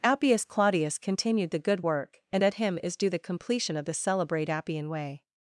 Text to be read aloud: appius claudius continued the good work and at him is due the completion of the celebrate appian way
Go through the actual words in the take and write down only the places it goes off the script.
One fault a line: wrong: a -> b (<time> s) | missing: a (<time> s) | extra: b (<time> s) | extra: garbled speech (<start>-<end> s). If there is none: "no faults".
no faults